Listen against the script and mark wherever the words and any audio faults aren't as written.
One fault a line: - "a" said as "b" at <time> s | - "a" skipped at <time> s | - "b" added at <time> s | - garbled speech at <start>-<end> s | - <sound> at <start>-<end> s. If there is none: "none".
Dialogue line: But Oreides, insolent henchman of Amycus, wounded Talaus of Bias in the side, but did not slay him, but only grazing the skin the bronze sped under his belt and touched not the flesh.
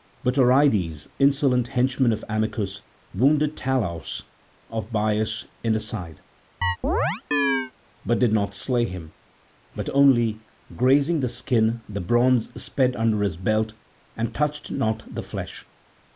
- chirp at 6.6-7.7 s